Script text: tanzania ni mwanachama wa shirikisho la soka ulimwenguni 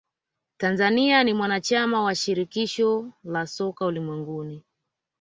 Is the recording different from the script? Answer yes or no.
no